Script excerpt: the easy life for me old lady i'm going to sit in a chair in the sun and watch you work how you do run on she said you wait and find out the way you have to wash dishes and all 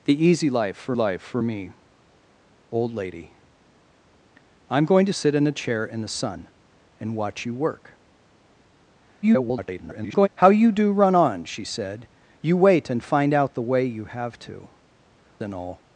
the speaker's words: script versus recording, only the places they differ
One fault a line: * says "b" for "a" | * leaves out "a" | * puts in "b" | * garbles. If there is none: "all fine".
* puts in "life for"
* garbles
* leaves out "wash dishes"